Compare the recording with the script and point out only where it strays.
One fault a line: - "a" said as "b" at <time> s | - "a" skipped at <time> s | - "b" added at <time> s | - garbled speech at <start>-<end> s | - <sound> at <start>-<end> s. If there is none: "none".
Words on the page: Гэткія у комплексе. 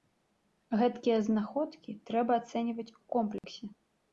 - "знаходкі трэба ацэньваць" added at 1.3 s
- dropout at 3.4-3.4 s